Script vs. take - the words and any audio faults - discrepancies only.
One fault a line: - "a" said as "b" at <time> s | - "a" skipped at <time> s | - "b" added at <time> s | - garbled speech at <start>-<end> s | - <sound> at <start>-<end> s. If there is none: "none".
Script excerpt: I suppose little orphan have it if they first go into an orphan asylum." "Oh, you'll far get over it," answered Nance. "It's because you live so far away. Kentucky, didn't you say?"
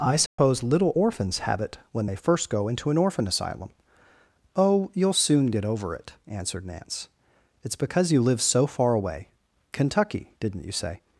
- dropout at 0.3-0.4 s
- "orphan" said as "orphans" at 0.9 s
- "if" said as "when" at 1.9 s
- "far" said as "soon" at 5.2 s